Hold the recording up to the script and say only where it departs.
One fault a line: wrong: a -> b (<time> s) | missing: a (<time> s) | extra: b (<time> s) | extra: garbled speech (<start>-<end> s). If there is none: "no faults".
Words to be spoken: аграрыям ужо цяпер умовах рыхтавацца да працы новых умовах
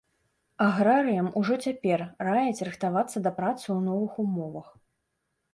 wrong: умовах -> раяць (2.3 s)
extra: ў (3.6 s)